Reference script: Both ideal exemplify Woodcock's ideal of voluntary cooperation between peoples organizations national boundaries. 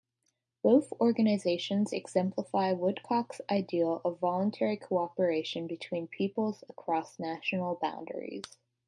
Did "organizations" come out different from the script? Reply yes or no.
yes